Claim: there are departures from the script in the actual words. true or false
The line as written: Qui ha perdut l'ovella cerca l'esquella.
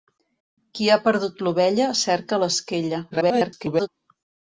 true